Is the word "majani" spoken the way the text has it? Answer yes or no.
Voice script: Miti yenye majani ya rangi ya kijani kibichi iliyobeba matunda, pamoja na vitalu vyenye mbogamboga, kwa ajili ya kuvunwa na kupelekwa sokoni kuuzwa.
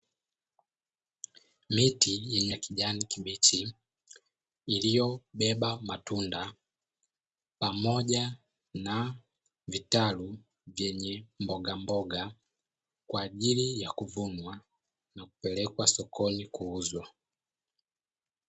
no